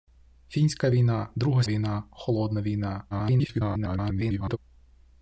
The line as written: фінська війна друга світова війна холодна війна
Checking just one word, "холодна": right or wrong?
right